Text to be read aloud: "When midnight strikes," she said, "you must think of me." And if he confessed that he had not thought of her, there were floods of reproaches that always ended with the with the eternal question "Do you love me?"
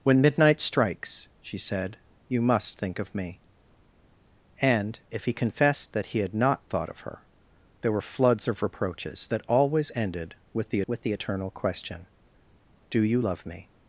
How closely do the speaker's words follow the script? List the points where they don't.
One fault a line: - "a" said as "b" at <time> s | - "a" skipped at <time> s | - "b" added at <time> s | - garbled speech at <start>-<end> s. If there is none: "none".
none